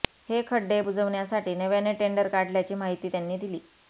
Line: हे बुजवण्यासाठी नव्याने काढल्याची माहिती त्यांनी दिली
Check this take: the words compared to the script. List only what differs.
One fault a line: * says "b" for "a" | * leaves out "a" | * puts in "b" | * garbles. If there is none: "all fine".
* puts in "खड्डे"
* puts in "टेंडर"